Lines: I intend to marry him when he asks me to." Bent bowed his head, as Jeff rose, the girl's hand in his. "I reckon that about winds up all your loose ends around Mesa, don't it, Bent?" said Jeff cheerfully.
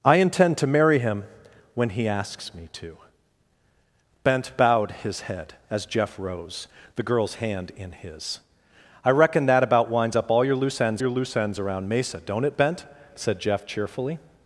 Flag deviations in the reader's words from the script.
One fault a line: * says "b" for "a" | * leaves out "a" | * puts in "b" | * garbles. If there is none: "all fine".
* puts in "your loose ends"